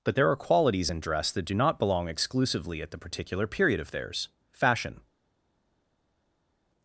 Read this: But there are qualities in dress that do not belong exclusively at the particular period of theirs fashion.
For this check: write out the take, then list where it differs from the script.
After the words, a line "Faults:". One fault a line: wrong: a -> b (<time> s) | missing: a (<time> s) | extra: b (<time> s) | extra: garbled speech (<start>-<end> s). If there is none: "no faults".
But there are qualities in dress that do not belong exclusively at the particular period of theirs fashion.
Faults:
no faults